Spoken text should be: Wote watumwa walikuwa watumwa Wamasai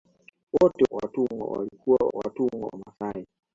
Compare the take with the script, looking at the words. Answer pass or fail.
pass